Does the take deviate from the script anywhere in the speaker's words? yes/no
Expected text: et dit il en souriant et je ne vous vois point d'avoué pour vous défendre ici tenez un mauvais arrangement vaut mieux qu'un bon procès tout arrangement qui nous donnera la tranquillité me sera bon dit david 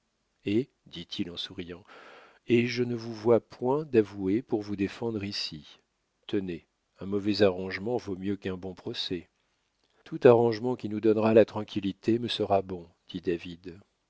no